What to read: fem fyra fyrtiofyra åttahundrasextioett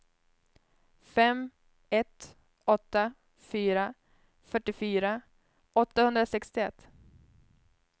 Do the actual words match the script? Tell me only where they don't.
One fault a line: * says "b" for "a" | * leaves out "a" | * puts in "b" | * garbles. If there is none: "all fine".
* puts in "ett åtta"